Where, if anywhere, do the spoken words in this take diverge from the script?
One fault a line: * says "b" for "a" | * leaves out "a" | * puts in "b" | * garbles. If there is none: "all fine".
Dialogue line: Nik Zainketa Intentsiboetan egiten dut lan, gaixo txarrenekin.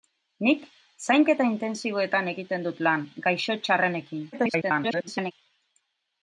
* garbles